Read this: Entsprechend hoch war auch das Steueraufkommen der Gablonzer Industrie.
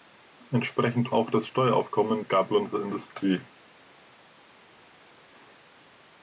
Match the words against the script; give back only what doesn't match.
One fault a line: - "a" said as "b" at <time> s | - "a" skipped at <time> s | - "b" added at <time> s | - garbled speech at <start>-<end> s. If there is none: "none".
- "hoch war" skipped at 1.1 s
- "der" skipped at 2.2 s